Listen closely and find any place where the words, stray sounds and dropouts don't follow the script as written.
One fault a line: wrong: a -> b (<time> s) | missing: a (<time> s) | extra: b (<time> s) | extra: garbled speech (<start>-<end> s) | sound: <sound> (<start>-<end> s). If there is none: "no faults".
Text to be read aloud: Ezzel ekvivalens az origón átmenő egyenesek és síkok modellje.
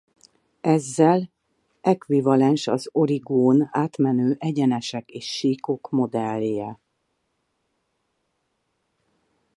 no faults